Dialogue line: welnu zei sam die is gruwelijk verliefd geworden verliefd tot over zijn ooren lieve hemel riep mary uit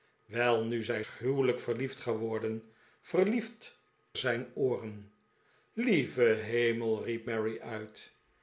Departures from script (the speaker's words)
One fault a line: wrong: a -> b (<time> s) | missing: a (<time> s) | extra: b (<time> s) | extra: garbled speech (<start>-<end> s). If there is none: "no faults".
missing: sam die is (1.1 s)
missing: tot over (3.8 s)